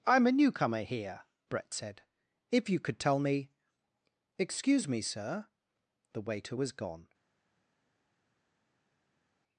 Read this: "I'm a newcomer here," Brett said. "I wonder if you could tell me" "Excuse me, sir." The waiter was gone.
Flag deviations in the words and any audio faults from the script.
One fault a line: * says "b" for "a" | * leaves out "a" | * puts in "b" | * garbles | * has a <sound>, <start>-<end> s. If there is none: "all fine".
* leaves out "I wonder"